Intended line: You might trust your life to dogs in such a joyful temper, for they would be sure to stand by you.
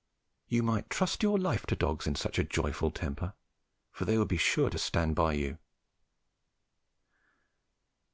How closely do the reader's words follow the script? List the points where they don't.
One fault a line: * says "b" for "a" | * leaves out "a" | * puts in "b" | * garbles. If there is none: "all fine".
all fine